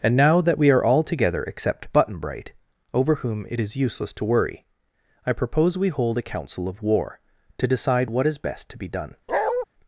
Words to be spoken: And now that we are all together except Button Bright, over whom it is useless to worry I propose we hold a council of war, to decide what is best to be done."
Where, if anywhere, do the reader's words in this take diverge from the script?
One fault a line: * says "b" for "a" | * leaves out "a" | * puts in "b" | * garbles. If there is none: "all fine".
all fine